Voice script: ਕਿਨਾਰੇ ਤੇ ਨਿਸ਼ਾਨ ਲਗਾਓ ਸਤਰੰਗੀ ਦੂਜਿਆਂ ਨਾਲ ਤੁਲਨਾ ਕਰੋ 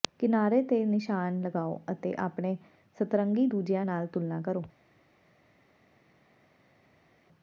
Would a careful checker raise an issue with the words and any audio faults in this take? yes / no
yes